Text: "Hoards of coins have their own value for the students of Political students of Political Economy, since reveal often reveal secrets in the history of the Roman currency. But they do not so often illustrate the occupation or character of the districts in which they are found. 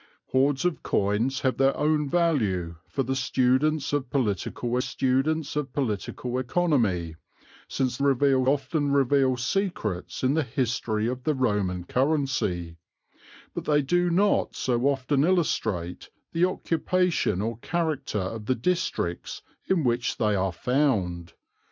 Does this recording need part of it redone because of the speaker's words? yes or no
no